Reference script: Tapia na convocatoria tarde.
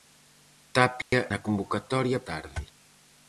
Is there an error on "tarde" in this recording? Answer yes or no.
no